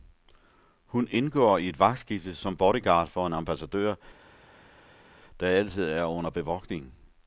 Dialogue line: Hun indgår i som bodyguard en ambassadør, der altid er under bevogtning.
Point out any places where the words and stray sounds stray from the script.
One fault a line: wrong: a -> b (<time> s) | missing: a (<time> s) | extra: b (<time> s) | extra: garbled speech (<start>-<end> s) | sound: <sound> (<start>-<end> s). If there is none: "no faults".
extra: et vagtskifte (1.7 s)
extra: for (3.1 s)